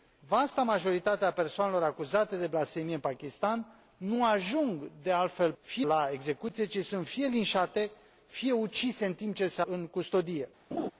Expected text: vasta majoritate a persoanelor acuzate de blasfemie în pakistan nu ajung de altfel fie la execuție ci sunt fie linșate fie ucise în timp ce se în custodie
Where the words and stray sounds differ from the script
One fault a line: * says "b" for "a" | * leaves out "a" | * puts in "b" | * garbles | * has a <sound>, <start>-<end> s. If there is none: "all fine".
* has a laugh, 10.7-10.9 s